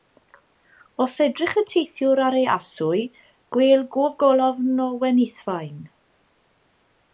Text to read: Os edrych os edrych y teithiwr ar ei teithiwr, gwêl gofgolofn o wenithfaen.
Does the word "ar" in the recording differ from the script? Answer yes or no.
no